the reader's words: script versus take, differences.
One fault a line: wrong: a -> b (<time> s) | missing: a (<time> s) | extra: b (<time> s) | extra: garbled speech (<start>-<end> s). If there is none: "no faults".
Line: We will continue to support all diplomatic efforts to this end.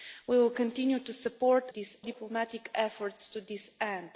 wrong: all -> this (1.7 s)